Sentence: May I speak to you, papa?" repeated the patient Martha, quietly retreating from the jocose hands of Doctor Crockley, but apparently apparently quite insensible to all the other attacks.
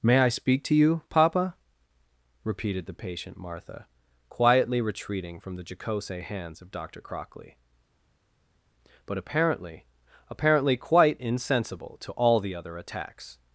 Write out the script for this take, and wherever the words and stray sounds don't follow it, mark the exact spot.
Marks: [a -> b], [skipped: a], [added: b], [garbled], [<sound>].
May I speak to you, papa?" repeated the patient Martha, quietly retreating from the jocose hands of Doctor Crockley, but apparently apparently quite insensible to all the other attacks.